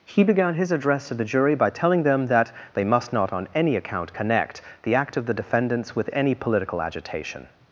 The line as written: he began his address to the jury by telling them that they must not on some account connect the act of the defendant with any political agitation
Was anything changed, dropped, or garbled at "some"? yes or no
yes